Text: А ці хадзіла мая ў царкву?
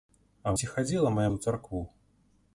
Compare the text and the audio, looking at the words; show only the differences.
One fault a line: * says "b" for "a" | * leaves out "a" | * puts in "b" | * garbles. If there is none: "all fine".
all fine